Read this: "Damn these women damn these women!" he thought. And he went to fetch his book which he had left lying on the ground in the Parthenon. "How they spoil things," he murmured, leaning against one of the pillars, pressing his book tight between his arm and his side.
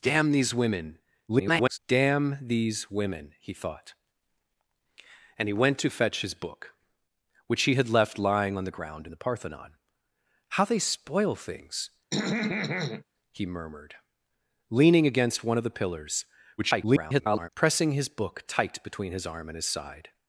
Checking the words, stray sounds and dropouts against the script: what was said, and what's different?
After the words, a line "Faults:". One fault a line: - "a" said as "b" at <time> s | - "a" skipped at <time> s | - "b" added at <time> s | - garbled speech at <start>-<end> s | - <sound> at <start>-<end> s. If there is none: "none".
"Damn these women [garbled] damn these women!" he thought. And he went to fetch his book which he had left lying on the ground in the Parthenon. "How they spoil things," he murmured, leaning against one of the pillars, [garbled] pressing his book tight between his arm and his side.
Faults:
- garbled speech at 1.3-1.8 s
- throat clearing at 12.1-13.0 s
- garbled speech at 16.6-17.5 s